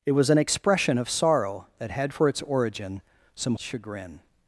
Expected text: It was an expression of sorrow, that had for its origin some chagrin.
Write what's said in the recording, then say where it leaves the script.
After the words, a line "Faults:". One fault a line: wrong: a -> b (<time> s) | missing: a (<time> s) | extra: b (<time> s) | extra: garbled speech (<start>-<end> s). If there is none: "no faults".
It was an expression of sorrow, that had for its origin some chagrin.
Faults:
no faults